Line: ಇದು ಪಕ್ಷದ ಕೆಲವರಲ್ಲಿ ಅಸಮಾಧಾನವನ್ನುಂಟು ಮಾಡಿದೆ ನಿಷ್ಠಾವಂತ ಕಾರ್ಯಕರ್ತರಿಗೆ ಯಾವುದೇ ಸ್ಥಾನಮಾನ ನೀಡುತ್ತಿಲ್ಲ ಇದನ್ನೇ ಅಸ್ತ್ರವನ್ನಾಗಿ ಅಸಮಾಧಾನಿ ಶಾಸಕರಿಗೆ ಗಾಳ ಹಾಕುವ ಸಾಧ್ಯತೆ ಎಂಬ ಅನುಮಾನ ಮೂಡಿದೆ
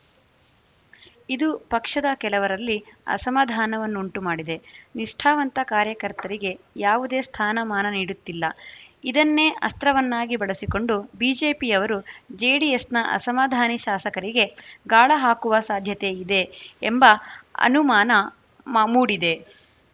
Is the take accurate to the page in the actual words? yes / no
no